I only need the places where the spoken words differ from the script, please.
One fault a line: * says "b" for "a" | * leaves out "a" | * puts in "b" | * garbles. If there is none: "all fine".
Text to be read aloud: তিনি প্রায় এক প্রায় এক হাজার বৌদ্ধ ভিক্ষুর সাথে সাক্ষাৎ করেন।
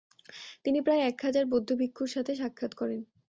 * leaves out "প্রায় এক"